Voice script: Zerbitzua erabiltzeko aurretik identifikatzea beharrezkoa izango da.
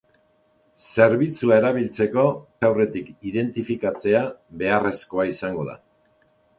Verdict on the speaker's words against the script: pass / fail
pass